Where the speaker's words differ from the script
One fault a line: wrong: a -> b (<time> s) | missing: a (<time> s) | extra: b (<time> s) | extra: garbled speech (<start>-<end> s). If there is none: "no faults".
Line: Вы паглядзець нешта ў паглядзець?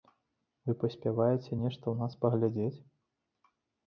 wrong: паглядзець -> паспяваеце (0.8 s)
extra: нас (2.0 s)